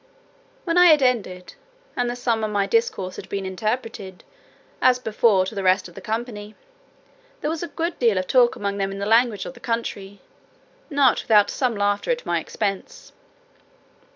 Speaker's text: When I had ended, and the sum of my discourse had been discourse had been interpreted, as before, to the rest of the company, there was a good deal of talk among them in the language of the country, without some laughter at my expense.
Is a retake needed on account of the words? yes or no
yes